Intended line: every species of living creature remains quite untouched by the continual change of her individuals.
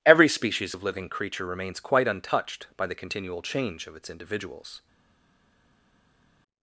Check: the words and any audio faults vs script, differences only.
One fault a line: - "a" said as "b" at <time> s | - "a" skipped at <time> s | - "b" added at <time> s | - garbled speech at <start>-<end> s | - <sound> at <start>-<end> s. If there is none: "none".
- "her" said as "its" at 4.0 s